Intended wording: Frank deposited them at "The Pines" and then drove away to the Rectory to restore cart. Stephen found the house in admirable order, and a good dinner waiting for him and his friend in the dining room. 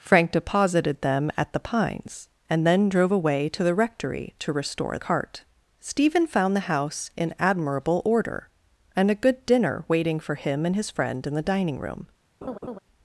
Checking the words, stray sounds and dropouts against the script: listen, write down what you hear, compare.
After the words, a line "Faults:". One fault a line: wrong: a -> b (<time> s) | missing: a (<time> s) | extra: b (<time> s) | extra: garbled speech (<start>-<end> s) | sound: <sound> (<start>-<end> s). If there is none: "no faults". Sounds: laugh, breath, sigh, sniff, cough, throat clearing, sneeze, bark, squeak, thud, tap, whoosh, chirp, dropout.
Frank deposited them at "The Pines" and then drove away to the Rectory to restore cart. Stephen found the house in admirable order, and a good dinner waiting for him and his friend in the dining room.
Faults:
sound: laugh (12.4-12.8 s)